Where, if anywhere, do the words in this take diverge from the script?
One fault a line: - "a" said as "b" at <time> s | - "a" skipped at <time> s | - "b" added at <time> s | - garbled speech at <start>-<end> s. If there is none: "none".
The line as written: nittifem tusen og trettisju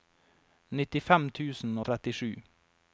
none